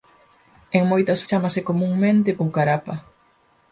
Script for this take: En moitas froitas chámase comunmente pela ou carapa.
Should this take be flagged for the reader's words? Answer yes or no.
yes